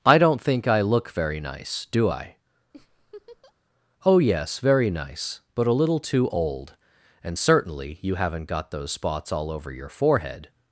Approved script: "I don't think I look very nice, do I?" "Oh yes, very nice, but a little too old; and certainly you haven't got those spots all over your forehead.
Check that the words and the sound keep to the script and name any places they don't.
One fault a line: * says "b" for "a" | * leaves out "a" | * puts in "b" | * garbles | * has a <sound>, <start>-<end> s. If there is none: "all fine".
* has a laugh, 2.7-3.5 s